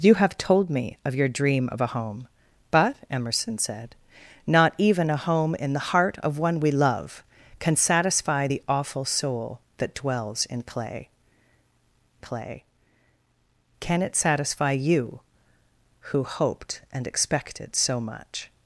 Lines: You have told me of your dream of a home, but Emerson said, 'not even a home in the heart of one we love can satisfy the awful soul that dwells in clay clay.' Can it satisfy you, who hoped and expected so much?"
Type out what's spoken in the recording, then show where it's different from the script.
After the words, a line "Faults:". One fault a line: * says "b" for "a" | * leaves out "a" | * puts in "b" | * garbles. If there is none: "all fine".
You have told me of your dream of a home, but Emerson said, 'not even a home in the heart of one we love can satisfy the awful soul that dwells in clay clay.' Can it satisfy you, who hoped and expected so much?"
Faults:
all fine